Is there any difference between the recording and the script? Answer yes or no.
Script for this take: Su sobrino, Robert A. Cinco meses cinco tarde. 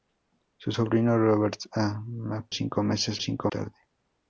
no